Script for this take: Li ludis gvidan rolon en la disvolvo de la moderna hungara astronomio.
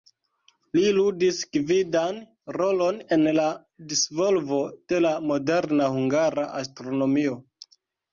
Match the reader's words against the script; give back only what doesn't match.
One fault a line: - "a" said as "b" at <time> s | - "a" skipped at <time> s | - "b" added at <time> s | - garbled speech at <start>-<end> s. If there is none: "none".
none